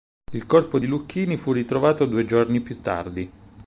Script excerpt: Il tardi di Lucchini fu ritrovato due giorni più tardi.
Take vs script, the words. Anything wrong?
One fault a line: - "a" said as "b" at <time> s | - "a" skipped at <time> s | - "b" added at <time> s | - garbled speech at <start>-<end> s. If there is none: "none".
- "tardi" said as "corpo" at 0.5 s